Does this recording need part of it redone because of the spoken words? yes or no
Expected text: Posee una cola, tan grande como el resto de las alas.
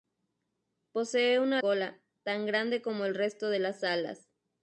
no